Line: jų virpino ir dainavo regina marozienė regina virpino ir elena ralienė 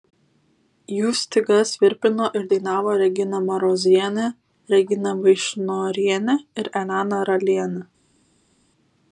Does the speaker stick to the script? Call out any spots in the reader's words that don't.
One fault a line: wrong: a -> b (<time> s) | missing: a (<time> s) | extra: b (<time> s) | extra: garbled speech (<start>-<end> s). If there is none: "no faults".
extra: stygas (1.2 s)
wrong: virpino -> vaišnorienė (5.2 s)